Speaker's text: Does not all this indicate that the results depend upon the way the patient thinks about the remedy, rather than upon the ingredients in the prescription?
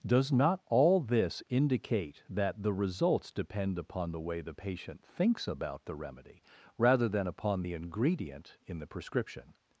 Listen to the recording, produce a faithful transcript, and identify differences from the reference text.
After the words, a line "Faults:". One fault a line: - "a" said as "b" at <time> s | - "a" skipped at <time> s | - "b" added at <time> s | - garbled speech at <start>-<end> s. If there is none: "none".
Does not all this indicate that the results depend upon the way the patient thinks about the remedy, rather than upon the ingredient in the prescription?
Faults:
- "ingredients" said as "ingredient" at 7.7 s